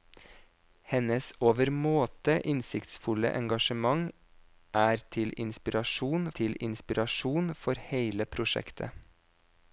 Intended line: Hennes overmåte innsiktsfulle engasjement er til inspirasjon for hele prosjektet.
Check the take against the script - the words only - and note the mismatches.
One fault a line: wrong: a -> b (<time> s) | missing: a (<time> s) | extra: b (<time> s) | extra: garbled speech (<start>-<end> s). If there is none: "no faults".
extra: til inspirasjon (6.4 s)